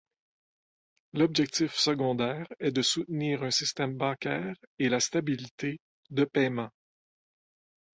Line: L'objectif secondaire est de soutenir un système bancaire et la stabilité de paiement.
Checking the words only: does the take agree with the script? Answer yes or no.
yes